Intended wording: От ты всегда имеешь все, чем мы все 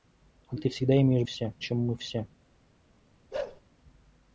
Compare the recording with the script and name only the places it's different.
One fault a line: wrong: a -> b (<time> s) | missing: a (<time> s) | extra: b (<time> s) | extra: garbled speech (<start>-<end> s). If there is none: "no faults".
no faults